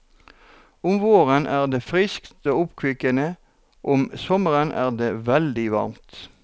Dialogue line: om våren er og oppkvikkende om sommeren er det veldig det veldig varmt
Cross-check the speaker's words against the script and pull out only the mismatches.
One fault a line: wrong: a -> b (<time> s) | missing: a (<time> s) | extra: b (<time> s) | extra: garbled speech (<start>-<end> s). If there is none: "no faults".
extra: det friskt (1.7 s)
missing: det veldig (5.7 s)